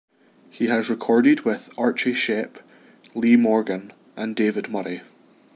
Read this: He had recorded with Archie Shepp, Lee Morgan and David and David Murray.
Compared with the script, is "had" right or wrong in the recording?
wrong